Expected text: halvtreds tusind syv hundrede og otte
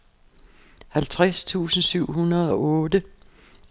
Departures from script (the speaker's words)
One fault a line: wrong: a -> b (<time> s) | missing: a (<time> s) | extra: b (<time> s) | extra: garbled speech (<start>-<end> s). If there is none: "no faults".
no faults